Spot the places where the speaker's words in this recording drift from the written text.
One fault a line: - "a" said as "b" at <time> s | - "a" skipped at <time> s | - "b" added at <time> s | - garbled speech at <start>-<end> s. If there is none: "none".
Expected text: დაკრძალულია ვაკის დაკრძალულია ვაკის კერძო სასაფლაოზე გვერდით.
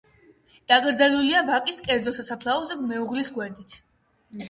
- "დაკრძალულია ვაკის" skipped at 1.8 s
- "მეუღლის" added at 2.9 s